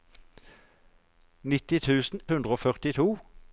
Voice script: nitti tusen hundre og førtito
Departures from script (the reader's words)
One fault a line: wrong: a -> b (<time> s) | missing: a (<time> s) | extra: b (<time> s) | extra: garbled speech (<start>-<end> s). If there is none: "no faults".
no faults